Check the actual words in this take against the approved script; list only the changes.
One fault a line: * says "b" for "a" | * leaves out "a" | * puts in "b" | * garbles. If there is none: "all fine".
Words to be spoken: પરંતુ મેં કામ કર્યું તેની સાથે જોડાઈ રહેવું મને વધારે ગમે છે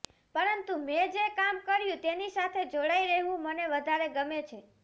* puts in "જે"